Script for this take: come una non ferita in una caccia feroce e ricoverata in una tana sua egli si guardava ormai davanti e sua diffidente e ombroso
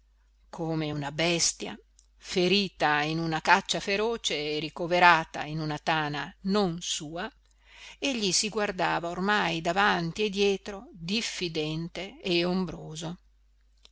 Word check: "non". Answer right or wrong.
wrong